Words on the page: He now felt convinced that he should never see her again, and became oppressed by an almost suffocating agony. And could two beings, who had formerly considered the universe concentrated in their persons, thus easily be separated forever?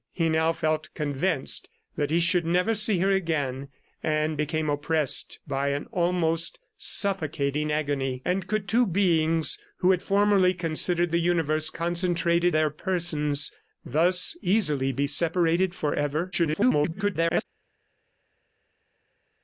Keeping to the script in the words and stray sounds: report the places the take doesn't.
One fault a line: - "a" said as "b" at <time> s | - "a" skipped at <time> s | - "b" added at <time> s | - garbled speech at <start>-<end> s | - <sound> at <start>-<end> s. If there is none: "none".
- "in" skipped at 12.5 s
- garbled speech at 16.3-17.4 s